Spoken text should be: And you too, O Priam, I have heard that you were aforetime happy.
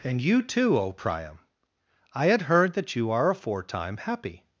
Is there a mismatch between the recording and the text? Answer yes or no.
yes